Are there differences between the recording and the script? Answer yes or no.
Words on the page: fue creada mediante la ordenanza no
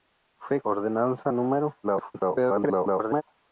yes